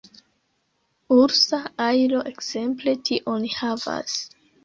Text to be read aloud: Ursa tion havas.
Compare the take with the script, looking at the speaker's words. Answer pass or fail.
fail